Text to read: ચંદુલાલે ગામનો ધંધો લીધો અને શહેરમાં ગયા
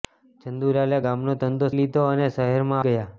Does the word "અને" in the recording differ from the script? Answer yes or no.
no